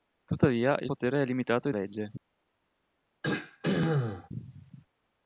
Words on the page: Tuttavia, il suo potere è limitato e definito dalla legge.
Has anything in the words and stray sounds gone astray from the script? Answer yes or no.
yes